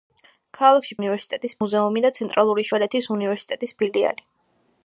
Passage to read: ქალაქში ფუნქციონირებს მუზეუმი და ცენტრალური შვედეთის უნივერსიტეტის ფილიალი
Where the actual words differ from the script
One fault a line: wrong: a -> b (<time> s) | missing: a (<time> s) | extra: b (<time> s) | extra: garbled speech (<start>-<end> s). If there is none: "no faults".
wrong: ფუნქციონირებს -> უნივერსიტეტის (1.0 s)